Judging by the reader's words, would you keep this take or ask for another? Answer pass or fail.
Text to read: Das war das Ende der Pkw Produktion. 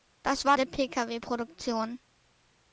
fail